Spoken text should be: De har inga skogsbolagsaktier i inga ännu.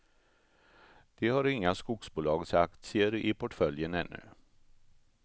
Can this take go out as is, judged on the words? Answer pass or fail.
fail